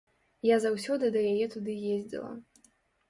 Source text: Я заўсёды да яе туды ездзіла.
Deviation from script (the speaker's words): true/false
false